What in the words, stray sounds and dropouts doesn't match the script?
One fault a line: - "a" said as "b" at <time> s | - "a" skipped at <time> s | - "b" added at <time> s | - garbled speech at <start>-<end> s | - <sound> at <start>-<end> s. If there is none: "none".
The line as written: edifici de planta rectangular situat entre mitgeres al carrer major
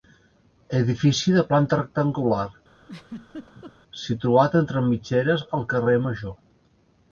- laugh at 2.8-3.7 s